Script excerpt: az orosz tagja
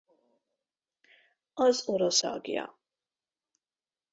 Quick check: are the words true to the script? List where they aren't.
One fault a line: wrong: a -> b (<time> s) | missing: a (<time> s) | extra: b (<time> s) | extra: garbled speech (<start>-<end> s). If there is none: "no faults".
no faults